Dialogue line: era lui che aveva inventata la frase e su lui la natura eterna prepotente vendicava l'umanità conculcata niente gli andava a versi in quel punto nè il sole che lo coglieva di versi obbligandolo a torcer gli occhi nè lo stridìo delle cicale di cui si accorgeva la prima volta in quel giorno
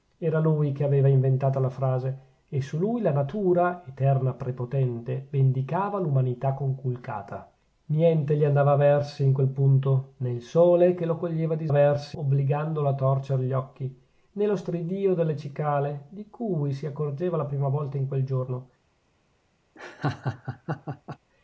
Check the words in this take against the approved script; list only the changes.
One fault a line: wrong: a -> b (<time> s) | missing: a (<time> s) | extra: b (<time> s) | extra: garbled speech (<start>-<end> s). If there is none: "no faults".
no faults